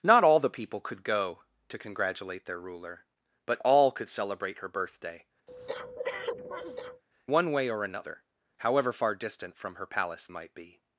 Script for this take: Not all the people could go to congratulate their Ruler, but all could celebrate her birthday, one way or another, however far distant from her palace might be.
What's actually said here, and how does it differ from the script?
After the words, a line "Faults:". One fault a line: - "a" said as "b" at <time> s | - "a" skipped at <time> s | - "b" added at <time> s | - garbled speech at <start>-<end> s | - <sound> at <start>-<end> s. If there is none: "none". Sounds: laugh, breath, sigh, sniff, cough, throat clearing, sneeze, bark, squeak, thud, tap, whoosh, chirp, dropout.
Not all the people could go to congratulate their Ruler, but all could celebrate her birthday, one way or another, however far distant from her palace might be.
Faults:
- breath at 5.5-7.0 s